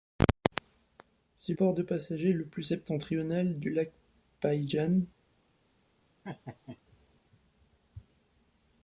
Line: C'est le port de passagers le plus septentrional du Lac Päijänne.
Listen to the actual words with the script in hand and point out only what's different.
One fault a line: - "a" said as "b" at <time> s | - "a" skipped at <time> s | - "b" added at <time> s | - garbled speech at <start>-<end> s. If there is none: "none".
- "le" skipped at 1.5 s